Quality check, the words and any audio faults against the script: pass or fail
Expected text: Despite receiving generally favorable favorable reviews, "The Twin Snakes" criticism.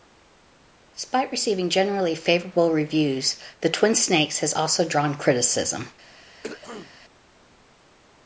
fail